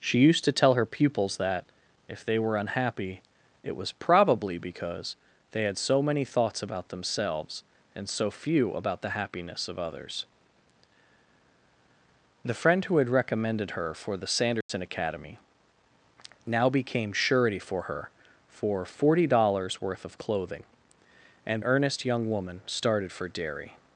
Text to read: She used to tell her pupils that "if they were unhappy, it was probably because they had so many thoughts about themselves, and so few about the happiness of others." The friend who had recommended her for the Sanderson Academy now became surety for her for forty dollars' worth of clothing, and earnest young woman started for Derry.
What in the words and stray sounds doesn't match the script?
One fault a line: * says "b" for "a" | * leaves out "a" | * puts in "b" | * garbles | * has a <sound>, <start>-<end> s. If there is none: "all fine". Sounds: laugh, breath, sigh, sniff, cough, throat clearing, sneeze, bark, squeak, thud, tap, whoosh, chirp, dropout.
* has a dropout, 14.6-14.7 s